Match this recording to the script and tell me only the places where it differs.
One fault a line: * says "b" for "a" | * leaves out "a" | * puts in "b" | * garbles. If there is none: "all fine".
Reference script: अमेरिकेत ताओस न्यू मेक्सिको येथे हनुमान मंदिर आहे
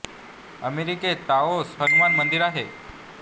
* leaves out "न्यू मेक्सिको येथे"